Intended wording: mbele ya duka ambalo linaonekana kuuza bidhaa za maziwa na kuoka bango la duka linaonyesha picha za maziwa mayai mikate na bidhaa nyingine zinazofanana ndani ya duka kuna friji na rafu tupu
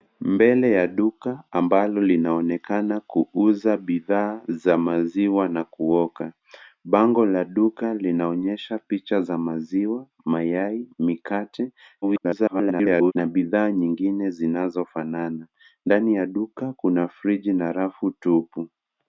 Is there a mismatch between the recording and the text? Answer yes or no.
yes